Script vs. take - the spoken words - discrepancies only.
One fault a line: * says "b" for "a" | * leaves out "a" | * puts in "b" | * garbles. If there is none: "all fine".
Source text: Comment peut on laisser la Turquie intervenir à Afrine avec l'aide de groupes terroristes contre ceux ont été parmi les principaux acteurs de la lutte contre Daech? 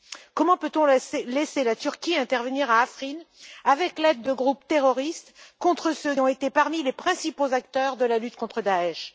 all fine